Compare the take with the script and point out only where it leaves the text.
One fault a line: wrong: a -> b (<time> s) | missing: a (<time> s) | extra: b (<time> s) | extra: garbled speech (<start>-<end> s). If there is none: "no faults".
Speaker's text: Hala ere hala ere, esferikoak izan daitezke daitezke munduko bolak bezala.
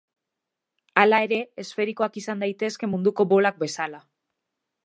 missing: hala ere (1.4 s)
missing: daitezke (2.9 s)